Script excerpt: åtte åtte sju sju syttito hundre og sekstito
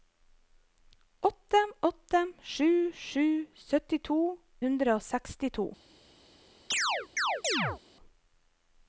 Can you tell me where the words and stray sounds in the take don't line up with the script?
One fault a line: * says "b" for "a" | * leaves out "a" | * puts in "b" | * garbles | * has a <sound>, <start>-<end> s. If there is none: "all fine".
* has a chirp, 6.7-7.8 s